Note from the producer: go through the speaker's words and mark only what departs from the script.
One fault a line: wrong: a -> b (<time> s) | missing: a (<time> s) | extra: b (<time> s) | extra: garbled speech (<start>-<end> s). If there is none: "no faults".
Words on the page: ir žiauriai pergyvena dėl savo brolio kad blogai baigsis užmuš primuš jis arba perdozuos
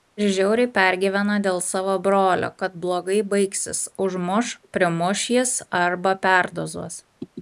no faults